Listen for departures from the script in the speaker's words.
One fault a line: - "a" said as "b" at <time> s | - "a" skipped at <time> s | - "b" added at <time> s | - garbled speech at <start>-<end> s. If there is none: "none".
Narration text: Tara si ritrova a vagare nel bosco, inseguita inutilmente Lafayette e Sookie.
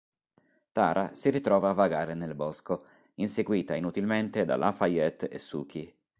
- "da" added at 4.5 s